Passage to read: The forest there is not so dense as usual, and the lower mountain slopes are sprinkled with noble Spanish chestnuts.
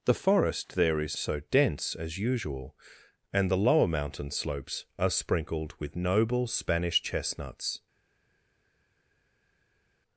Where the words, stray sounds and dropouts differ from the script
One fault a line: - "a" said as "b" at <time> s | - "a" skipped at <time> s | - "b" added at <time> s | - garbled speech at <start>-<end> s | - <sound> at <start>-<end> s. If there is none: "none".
- "not" skipped at 1.1 s